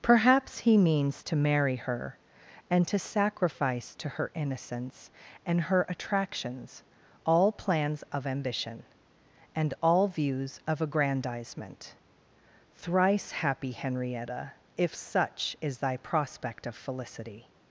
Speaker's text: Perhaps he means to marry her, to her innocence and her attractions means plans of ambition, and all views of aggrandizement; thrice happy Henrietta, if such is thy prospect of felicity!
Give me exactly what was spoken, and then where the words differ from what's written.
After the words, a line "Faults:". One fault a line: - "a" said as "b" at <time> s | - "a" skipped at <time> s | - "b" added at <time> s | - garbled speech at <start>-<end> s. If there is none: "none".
Perhaps he means to marry her, and to sacrifice to her innocence and her attractions all plans of ambition, and all views of aggrandizement; thrice happy Henrietta, if such is thy prospect of felicity!
Faults:
- "and" added at 2.7 s
- "sacrifice to" added at 3.0 s
- "means" said as "all" at 7.2 s